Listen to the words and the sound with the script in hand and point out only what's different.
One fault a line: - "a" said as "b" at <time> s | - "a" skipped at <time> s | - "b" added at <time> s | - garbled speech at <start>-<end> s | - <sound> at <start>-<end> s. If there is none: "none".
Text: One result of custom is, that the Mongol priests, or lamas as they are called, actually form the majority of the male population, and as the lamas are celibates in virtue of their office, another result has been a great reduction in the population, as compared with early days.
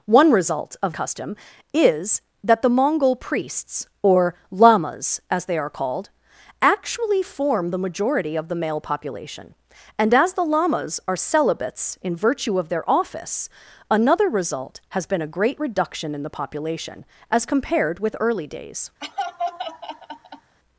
- laugh at 19.0-20.6 s